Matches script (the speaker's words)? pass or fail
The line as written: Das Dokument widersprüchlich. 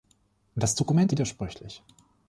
pass